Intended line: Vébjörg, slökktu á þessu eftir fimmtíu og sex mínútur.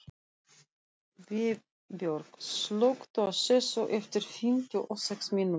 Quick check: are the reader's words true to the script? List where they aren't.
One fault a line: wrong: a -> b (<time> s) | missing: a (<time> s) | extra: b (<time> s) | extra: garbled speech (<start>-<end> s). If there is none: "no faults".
no faults